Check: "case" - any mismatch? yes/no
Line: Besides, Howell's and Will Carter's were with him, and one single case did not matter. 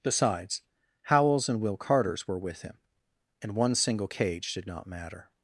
yes